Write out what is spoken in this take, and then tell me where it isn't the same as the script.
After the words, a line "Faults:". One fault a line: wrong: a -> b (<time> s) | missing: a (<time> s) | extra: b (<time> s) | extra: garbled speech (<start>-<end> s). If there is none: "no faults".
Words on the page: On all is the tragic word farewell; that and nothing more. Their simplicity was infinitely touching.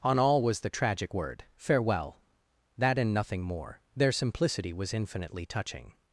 On all was the tragic word farewell; that and nothing more. Their simplicity was infinitely touching.
Faults:
wrong: is -> was (0.4 s)